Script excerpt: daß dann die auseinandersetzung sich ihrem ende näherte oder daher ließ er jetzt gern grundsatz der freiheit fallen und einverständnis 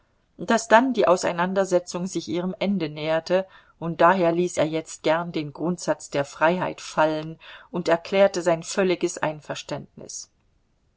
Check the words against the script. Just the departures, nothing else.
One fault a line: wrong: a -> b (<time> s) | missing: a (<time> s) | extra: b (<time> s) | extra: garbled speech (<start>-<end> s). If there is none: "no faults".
wrong: oder -> und (3.8 s)
extra: den (5.3 s)
extra: erklärte sein völliges (7.9 s)